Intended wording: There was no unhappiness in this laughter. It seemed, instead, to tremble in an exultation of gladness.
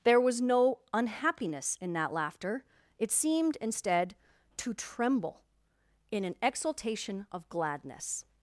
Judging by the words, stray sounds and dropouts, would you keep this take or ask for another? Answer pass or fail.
fail